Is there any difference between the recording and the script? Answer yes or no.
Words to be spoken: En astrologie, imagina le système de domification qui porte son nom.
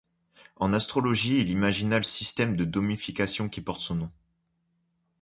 yes